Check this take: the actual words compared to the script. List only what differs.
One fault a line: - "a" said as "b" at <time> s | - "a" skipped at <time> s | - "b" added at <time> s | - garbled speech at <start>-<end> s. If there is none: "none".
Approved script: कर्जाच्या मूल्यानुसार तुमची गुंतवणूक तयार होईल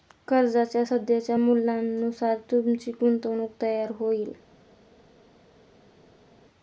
- "सध्याच्या" added at 0.8 s